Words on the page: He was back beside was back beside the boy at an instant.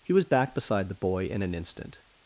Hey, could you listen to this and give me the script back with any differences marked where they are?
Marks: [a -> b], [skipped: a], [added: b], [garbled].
He was back beside [skipped: was back beside] the boy [at -> in] an instant.